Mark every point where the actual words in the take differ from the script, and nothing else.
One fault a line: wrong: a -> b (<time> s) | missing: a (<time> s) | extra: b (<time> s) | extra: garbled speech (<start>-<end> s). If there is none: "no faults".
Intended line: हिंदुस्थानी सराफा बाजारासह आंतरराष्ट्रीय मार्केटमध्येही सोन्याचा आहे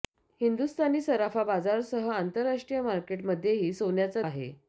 no faults